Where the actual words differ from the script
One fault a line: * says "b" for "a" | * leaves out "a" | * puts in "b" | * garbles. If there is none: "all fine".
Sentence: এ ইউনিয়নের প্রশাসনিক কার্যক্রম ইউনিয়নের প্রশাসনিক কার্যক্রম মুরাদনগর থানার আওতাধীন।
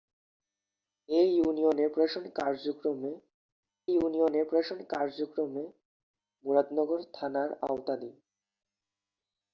all fine